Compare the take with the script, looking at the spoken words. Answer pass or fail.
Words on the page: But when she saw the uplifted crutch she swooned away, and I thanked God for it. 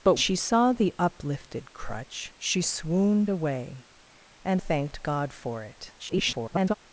fail